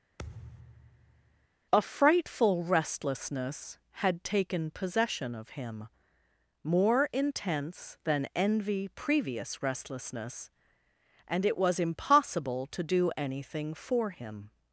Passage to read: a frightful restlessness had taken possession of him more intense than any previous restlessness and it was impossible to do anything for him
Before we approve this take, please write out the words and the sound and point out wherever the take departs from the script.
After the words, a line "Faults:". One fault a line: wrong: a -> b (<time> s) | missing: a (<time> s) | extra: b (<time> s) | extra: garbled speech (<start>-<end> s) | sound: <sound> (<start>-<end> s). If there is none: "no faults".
a frightful restlessness had taken possession of him more intense than envy previous restlessness and it was impossible to do anything for him
Faults:
sound: thud (0.2-1.5 s)
wrong: any -> envy (8.3 s)